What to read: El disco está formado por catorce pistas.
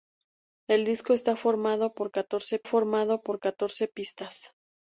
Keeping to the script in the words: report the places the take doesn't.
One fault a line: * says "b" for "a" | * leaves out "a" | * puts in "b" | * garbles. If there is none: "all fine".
* puts in "formado por catorce"